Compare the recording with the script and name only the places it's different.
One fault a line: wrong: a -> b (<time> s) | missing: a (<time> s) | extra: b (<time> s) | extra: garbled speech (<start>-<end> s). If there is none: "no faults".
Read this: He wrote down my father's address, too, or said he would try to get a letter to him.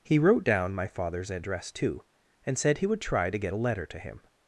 wrong: or -> and (2.5 s)